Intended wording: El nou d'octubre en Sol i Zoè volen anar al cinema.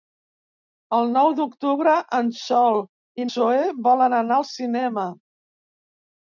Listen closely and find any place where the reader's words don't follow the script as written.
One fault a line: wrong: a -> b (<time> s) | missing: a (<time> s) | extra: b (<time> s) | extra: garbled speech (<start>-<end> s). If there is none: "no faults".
no faults